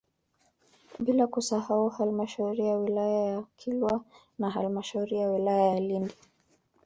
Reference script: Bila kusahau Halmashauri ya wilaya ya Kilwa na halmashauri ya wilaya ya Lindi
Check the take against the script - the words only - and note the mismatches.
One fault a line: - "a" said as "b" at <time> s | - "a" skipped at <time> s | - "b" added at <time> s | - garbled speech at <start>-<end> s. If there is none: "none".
none